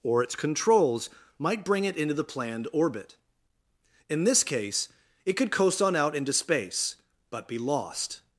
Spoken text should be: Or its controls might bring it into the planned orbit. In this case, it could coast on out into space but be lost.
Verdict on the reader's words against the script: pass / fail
pass